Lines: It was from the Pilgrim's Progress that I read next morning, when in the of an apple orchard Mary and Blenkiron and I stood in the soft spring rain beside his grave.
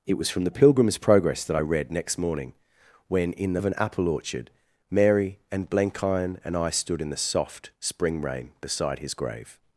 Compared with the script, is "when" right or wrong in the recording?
right